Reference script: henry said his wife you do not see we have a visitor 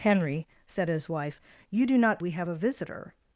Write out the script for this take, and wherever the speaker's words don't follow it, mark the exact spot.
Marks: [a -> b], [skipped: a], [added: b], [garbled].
henry said his wife you do not [skipped: see] we have a visitor